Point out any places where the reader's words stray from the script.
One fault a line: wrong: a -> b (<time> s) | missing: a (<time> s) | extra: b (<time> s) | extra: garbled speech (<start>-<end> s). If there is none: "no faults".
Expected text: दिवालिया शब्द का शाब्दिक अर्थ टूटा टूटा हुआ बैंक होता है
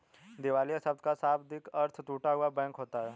missing: टूटा (2.3 s)